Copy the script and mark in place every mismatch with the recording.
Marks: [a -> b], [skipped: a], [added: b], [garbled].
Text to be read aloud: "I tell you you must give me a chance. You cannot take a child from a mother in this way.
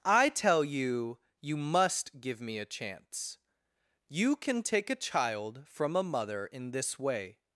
"I tell you you must give me a chance. You [cannot -> can] take a child from a mother in this way.